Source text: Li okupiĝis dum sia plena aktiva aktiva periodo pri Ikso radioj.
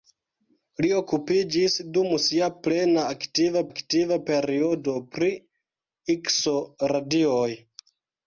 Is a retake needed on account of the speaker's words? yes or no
no